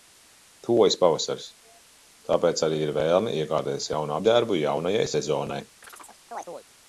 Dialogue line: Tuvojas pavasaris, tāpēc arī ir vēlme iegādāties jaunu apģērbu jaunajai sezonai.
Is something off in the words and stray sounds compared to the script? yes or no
yes